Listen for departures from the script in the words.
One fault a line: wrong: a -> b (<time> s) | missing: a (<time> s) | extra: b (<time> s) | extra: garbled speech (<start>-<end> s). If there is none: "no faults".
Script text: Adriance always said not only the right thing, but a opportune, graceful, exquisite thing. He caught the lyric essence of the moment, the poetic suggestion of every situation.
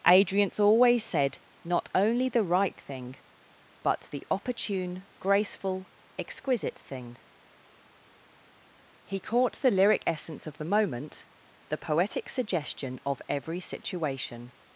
wrong: a -> the (4.1 s)